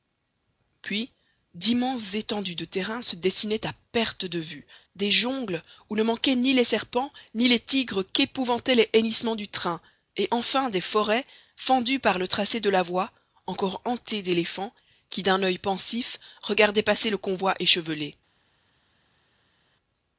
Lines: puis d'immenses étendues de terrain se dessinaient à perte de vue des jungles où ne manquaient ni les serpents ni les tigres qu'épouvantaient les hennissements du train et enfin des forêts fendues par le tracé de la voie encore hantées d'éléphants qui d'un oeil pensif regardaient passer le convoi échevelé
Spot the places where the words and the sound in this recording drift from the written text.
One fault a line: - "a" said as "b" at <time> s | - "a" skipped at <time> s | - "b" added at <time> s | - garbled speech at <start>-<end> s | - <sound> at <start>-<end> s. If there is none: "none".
none